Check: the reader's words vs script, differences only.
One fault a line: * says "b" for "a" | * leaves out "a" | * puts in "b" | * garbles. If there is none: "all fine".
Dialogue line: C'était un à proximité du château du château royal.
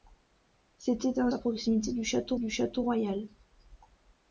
all fine